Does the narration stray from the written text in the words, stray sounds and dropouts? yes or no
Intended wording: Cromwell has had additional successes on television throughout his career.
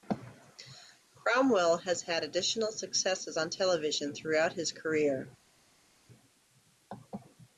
no